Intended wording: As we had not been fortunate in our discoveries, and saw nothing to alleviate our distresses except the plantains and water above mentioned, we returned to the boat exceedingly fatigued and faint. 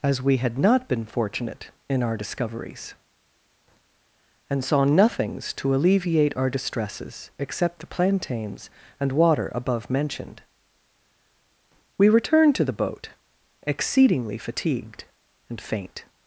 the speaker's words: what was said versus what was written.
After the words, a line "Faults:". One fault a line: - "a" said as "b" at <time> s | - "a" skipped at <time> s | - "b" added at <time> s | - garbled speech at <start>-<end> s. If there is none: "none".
As we had not been fortunate in our discoveries, and saw nothings to alleviate our distresses except the plantains and water above mentioned, we returned to the boat exceedingly fatigued and faint.
Faults:
- "nothing" said as "nothings" at 4.8 s